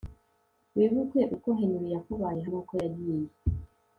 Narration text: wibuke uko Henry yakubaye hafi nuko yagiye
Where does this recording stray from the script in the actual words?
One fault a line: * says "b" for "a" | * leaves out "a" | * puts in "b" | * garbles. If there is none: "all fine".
* leaves out "hafi"